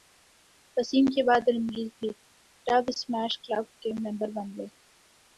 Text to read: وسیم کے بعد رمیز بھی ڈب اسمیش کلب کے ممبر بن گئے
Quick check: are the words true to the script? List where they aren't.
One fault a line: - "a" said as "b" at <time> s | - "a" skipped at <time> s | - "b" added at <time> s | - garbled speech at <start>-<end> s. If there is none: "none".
none